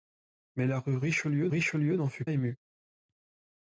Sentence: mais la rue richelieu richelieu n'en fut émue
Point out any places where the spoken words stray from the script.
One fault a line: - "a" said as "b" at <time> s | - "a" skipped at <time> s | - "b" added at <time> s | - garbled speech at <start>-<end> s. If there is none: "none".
none